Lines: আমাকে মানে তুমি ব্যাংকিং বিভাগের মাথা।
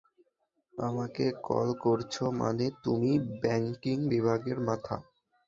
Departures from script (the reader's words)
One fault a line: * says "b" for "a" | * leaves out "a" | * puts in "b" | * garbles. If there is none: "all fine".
* puts in "কল করছো"